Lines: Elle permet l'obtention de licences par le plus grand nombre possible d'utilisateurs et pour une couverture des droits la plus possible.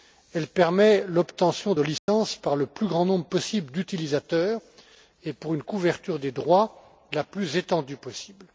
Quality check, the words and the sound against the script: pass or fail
fail